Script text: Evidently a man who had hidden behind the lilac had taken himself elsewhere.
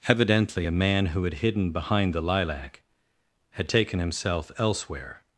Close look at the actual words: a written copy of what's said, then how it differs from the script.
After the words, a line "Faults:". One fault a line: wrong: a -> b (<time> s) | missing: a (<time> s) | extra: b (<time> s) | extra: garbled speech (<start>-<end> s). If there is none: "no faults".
Evidently a man who had hidden behind the lilac had taken himself elsewhere.
Faults:
no faults